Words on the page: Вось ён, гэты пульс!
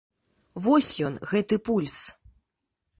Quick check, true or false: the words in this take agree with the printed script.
true